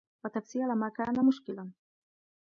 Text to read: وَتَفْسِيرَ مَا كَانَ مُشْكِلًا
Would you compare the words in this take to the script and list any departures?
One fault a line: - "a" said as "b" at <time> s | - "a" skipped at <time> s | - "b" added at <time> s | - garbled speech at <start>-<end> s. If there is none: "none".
none